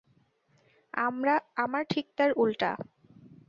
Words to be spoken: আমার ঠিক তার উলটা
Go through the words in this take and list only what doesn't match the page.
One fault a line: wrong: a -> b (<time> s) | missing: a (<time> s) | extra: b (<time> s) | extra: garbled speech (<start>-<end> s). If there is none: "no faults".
no faults